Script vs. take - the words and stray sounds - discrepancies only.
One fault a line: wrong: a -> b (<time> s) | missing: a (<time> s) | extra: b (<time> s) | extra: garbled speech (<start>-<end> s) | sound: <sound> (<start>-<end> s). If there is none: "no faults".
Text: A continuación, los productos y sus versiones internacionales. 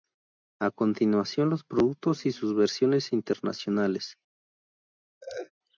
sound: laugh (5.2-5.5 s)